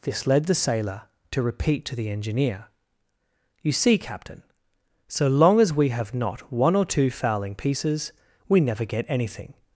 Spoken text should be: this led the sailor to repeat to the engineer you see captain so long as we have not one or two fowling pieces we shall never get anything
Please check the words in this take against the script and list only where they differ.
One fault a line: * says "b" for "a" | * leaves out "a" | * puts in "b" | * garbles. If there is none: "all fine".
* leaves out "shall"